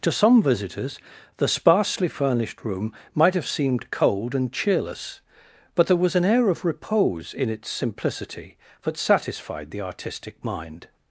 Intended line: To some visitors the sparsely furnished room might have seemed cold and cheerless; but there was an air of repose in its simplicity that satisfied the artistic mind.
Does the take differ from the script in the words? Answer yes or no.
no